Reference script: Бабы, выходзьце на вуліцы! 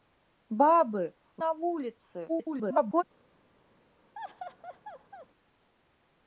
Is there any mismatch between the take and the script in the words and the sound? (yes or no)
yes